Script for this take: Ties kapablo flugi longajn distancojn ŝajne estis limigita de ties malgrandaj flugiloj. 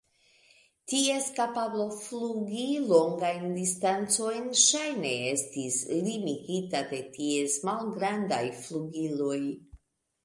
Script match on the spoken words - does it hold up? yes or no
yes